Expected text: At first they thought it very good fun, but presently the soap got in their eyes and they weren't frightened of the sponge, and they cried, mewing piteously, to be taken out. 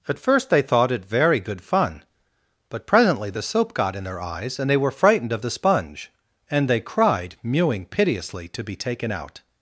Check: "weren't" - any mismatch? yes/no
yes